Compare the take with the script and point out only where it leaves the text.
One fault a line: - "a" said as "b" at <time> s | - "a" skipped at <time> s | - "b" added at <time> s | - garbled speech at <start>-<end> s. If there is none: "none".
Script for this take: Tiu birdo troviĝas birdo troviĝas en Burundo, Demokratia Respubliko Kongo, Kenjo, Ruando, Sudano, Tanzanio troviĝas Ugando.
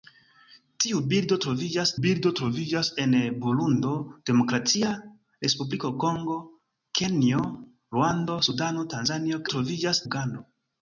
none